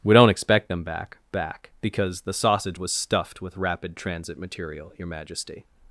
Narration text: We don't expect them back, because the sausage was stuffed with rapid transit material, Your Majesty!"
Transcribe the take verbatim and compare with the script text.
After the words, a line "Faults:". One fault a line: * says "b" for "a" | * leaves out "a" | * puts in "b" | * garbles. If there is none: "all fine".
We don't expect them back back, because the sausage was stuffed with rapid transit material, Your Majesty!"
Faults:
* puts in "back"